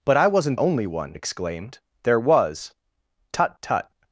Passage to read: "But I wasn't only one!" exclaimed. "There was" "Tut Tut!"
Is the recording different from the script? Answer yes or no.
no